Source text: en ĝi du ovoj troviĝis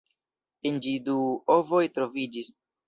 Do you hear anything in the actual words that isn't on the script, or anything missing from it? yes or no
no